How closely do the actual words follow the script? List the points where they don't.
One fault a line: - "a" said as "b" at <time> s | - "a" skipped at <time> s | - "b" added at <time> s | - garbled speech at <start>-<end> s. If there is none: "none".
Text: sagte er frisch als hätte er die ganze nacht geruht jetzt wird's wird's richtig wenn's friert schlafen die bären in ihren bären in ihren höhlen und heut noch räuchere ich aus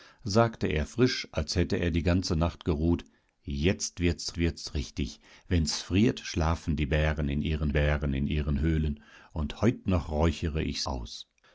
none